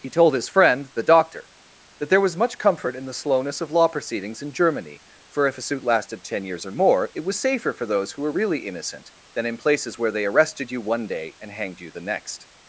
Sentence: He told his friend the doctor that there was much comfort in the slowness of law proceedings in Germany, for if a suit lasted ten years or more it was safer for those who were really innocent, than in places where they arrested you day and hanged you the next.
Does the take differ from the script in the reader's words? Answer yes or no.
yes